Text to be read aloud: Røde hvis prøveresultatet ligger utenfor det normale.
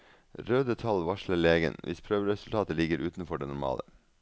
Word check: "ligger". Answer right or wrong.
right